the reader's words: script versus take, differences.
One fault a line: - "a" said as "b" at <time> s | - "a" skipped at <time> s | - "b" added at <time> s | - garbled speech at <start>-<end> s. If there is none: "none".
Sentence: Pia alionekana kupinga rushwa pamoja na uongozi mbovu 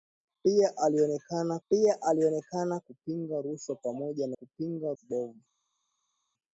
- "pia alionekana" added at 1.7 s
- "uongozi" said as "kupinga" at 4.3 s